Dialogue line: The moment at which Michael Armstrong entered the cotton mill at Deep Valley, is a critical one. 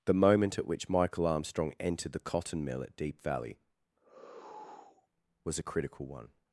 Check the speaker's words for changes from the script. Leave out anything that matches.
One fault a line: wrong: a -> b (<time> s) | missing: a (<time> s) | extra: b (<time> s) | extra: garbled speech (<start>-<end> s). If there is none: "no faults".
wrong: is -> was (5.4 s)